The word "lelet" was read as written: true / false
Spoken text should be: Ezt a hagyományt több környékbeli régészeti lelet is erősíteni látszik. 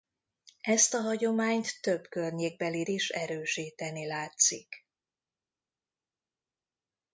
false